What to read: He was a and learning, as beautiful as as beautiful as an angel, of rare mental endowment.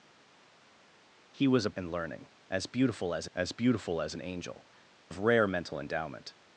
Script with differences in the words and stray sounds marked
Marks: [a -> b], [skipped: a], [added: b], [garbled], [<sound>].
He was a and learning, as beautiful as as beautiful as an angel, of rare mental endowment.